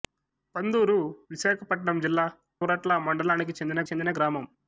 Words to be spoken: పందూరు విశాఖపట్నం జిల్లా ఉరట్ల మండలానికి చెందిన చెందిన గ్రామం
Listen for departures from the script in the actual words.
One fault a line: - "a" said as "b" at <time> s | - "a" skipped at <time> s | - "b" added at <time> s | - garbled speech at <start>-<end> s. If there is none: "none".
none